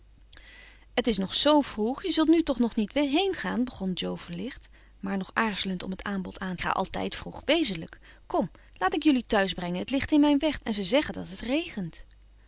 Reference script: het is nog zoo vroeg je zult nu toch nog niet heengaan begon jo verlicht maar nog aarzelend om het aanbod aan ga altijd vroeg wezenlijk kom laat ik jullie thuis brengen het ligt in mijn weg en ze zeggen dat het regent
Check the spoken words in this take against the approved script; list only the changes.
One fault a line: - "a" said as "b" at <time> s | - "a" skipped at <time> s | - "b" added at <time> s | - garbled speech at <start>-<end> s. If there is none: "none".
none